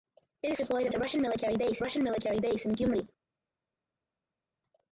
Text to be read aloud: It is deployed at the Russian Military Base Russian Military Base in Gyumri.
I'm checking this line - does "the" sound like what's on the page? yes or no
yes